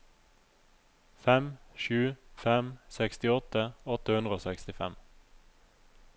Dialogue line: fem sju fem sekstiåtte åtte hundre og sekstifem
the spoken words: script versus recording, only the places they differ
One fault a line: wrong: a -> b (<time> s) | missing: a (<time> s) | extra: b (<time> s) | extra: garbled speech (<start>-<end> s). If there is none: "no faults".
no faults